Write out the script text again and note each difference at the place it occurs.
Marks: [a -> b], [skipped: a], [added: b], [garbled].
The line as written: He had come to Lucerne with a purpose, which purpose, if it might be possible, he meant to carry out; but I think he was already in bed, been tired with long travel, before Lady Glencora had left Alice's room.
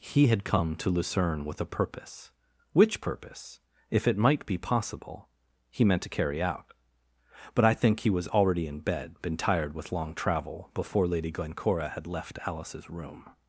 He had come to Lucerne with a purpose, which purpose, if it might be possible, he meant to carry out; but I think he was already in bed, been tired with long travel, before Lady Glencora had left Alice's room.